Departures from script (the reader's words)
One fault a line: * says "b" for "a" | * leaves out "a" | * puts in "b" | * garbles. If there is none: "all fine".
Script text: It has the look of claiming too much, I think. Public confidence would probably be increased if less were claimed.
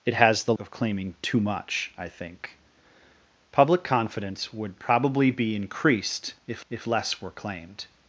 * leaves out "look"
* puts in "if"